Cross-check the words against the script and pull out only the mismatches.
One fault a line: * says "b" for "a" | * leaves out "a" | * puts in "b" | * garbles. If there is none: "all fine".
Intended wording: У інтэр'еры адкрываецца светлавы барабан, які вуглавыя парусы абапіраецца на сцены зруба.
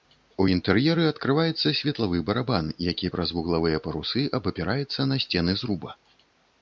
* puts in "праз"